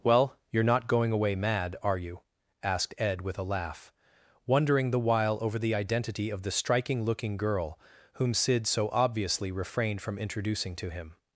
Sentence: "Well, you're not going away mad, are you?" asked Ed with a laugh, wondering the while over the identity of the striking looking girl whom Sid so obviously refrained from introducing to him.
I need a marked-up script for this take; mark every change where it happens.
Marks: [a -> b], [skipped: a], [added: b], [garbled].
"Well, you're not going away mad, are you?" asked Ed with a laugh, wondering the while over the identity of the striking looking girl whom Sid so obviously refrained from introducing to him.